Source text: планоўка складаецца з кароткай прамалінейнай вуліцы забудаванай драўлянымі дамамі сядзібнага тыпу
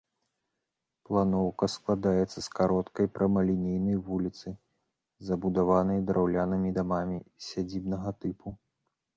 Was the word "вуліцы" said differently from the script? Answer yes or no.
no